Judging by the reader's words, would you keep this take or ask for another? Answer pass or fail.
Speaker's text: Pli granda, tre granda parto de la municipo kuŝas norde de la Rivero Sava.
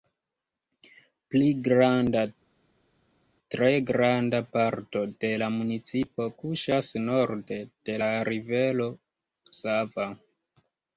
pass